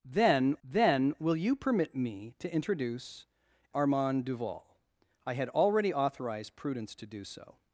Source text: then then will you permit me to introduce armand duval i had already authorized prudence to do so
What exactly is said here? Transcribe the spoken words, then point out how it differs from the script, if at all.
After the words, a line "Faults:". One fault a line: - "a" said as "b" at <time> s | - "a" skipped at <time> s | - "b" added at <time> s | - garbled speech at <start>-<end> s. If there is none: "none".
then then will you permit me to introduce armand duval i had already authorized prudence to do so
Faults:
none